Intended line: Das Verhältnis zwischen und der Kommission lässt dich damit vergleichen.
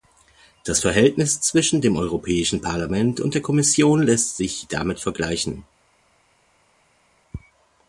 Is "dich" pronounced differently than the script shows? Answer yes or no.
yes